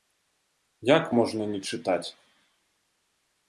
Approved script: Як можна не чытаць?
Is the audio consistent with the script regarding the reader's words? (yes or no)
yes